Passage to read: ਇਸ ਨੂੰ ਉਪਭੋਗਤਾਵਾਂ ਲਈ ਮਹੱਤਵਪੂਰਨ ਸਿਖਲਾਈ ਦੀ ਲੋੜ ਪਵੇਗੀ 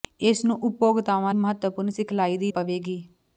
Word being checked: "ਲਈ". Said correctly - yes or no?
no